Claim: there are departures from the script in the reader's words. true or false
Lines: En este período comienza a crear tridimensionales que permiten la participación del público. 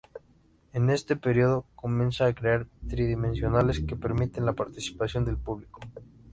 false